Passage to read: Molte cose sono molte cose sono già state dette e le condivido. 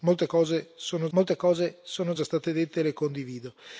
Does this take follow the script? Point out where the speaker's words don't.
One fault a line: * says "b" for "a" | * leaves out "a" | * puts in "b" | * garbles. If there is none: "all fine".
all fine